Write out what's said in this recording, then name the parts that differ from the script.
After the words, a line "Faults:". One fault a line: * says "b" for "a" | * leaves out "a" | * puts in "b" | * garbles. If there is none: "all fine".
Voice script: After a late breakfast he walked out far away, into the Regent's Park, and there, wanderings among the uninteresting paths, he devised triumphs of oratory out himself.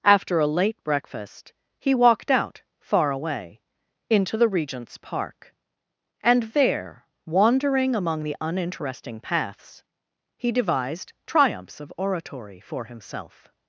After a late breakfast he walked out far away, into the Regent's Park, and there, wandering among the uninteresting paths, he devised triumphs of oratory for himself.
Faults:
* says "wandering" for "wanderings"
* says "for" for "out"